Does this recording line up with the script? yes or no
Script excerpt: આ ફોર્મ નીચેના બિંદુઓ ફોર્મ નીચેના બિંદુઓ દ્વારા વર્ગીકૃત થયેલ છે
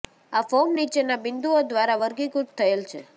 no